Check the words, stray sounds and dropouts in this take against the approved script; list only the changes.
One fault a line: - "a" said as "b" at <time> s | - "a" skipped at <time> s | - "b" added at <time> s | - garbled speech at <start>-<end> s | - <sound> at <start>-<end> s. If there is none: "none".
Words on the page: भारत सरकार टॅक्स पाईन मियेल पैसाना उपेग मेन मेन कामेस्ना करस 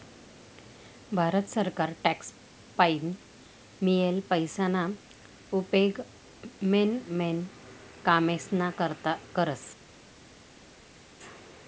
- "करता" added at 8.7 s